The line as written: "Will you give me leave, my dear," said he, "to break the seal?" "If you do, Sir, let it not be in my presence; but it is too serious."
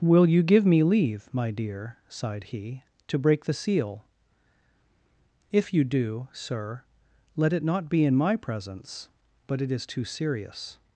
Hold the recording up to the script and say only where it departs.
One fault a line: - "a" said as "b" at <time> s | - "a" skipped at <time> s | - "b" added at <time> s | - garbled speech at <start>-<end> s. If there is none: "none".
- "said" said as "sighed" at 2.1 s